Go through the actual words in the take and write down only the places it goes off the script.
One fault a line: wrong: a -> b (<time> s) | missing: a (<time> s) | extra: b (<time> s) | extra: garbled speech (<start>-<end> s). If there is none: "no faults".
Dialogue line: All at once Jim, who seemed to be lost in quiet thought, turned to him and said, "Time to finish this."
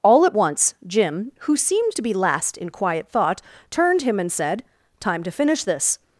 wrong: lost -> last (2.1 s)
missing: to (4.0 s)